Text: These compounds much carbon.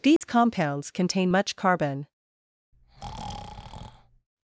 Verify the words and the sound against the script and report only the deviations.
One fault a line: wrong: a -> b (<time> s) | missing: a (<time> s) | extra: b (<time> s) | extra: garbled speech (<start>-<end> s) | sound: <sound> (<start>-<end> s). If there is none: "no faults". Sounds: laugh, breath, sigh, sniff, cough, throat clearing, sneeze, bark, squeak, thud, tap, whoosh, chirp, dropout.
sound: dropout (0.2-0.2 s)
extra: contain (0.9 s)
sound: breath (2.7-4.3 s)